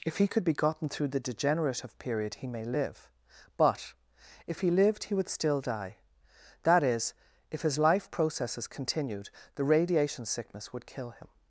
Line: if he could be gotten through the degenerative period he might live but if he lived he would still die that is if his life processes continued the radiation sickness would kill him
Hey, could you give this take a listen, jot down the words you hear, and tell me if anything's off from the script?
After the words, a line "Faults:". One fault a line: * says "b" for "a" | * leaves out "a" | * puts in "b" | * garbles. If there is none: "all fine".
if he could be gotten through the degenerative period he may live but if he lived he would still die that is if his life processes continued the radiation sickness would kill him
Faults:
* says "may" for "might"